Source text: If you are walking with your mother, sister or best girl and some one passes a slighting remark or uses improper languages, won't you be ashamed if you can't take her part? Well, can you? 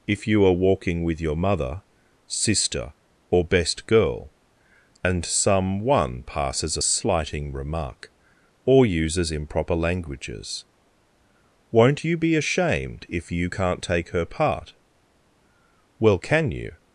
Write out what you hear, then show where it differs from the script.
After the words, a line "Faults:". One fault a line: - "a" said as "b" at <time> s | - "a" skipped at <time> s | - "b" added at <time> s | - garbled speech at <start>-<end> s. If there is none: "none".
If you are walking with your mother, sister or best girl and some one passes a slighting remark or uses improper languages, won't you be ashamed if you can't take her part? Well, can you?
Faults:
none